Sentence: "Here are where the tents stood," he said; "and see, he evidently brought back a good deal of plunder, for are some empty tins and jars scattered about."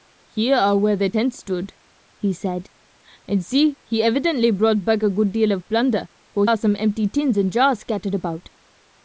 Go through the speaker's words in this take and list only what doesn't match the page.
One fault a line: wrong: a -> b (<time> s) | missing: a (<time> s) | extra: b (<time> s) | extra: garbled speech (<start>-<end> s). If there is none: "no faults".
no faults